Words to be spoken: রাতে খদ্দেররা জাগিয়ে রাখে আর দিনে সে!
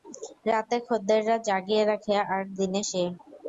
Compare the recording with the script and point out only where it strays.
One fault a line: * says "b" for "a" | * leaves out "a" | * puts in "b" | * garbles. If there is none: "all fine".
all fine